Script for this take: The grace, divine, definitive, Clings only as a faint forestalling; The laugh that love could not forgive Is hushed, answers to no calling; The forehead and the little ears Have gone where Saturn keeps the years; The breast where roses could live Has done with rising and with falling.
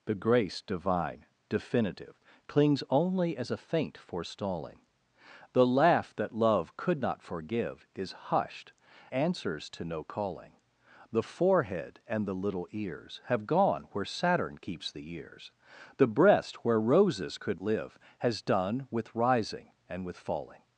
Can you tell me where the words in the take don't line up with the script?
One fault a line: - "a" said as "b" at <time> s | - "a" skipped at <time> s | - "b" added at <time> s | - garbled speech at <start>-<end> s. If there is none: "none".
none